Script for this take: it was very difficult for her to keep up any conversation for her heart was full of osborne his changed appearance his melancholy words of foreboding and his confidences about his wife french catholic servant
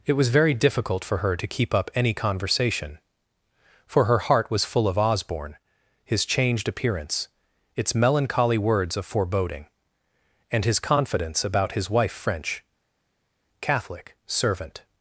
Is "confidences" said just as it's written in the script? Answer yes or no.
no